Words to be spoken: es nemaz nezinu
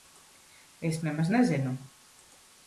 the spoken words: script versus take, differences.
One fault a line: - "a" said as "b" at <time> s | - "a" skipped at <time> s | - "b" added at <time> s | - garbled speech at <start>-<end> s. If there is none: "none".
none